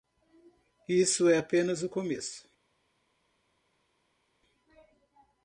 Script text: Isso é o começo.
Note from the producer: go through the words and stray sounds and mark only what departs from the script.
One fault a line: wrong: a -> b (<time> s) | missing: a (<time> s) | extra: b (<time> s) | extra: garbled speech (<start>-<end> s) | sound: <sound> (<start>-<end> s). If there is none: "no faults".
extra: apenas (1.4 s)